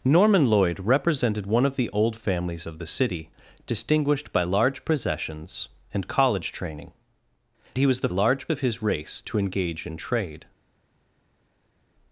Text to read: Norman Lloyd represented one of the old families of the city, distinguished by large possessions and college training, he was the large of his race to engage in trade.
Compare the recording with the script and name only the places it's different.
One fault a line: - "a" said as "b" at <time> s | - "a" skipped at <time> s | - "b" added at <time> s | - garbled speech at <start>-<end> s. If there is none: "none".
none